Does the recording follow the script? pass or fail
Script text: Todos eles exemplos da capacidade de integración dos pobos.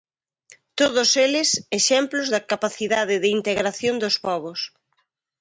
pass